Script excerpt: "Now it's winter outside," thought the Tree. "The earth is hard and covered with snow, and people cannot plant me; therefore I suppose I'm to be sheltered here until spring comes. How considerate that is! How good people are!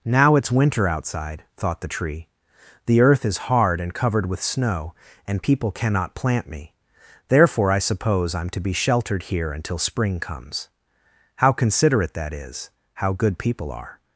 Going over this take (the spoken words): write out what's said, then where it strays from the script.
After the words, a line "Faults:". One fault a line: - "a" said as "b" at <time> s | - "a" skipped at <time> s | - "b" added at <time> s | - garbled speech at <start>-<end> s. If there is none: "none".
"Now it's winter outside," thought the Tree. "The earth is hard and covered with snow, and people cannot plant me; therefore I suppose I'm to be sheltered here until spring comes. How considerate that is! How good people are!
Faults:
none